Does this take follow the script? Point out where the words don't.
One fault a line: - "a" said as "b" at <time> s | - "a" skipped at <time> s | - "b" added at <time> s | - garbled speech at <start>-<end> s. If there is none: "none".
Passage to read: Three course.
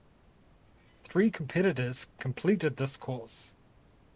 - "competitors completed this" added at 1.3 s